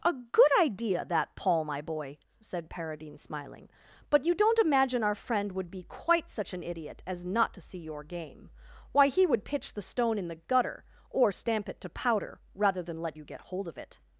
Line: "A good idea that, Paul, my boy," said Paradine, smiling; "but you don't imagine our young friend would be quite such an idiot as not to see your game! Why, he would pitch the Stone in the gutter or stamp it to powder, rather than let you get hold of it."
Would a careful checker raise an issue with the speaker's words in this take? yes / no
yes